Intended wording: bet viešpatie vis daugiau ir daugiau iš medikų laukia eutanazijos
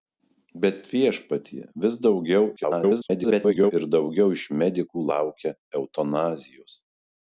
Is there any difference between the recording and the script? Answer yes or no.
yes